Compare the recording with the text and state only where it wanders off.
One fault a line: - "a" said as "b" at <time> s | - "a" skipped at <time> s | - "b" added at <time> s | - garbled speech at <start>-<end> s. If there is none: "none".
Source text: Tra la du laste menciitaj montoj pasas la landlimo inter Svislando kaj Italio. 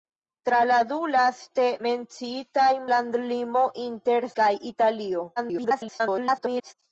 - "montoj pasas la" skipped at 2.7 s
- "Svislando" skipped at 4.3 s
- garbled speech at 5.4-6.7 s